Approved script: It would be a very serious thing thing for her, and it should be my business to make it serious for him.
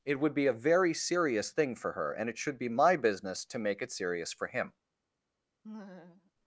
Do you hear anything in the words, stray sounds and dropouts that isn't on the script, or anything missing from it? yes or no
yes